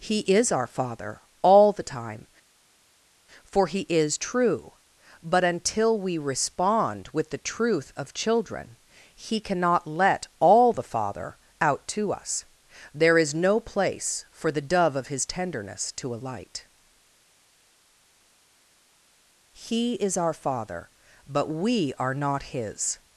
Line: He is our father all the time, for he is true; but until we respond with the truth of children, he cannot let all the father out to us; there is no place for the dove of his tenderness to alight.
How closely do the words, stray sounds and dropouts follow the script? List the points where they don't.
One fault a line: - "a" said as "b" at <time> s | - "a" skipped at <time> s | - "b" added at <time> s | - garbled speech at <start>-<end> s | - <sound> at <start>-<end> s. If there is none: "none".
- "He is our father but we are not his" added at 19.5 s